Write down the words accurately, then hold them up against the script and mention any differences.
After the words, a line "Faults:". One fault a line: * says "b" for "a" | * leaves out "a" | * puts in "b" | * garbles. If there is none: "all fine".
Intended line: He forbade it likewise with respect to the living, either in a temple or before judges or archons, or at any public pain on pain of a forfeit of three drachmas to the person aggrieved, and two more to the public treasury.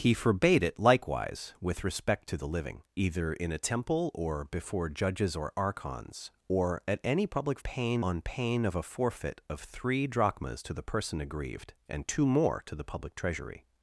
He forbade it likewise with respect to the living, either in a temple or before judges or archons, or at any public pain on pain of a forfeit of three drachmas to the person aggrieved, and two more to the public treasury.
Faults:
all fine